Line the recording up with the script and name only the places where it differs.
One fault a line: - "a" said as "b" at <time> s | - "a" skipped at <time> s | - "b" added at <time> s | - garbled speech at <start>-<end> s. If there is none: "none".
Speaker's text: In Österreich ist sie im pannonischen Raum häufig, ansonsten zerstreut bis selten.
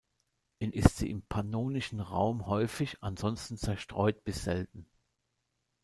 - "Österreich" skipped at 0.7 s